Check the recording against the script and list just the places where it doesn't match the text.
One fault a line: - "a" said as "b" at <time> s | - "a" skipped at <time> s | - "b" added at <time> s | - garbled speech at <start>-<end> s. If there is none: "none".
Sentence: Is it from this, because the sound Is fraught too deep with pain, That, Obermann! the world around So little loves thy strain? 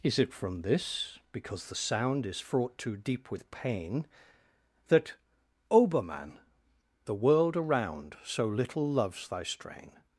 none